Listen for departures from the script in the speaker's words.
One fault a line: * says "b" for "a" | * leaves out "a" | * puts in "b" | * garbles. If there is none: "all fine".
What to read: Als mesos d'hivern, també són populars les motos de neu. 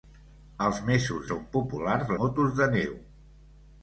* leaves out "d'hivern també"
* leaves out "les"